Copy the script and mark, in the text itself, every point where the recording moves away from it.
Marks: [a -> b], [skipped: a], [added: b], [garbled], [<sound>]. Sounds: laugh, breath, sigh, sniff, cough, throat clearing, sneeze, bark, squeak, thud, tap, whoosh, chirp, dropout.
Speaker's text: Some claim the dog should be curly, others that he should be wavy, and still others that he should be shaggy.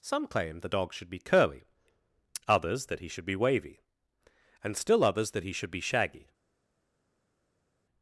Some claim the dog should be curly, others that he should be wavy, and still others that he should be shaggy.